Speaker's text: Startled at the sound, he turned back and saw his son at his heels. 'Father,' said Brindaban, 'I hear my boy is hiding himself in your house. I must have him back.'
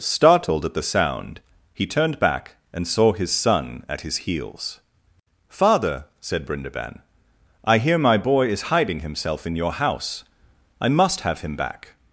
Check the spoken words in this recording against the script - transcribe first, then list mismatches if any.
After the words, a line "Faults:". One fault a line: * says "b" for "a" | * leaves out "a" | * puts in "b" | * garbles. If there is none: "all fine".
Startled at the sound, he turned back and saw his son at his heels. 'Father,' said Brindaban, 'I hear my boy is hiding himself in your house. I must have him back.'
Faults:
all fine